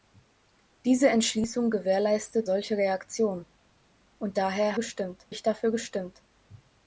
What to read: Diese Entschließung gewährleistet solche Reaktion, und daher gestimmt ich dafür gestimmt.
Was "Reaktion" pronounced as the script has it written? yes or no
yes